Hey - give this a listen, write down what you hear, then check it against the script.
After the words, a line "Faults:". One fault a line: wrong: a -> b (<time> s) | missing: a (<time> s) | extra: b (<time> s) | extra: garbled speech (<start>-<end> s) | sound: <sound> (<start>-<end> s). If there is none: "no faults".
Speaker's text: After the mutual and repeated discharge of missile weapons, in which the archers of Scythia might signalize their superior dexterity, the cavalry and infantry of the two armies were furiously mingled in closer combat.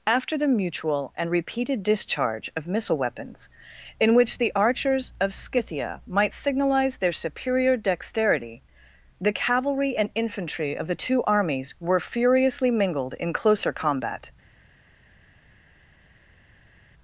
After the mutual and repeated discharge of missile weapons, in which the archers of Scythia might signalize their superior dexterity, the cavalry and infantry of the two armies were furiously mingled in closer combat.
Faults:
no faults